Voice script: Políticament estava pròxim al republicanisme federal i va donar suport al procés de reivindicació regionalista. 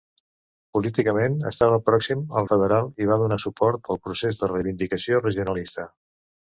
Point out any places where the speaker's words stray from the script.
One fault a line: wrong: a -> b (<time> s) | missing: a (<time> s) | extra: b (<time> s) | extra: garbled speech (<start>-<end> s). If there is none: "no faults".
missing: republicanisme (2.5 s)